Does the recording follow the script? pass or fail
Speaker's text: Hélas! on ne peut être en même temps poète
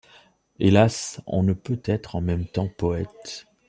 pass